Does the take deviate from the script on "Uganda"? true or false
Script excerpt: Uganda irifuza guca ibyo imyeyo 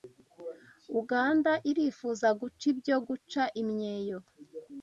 false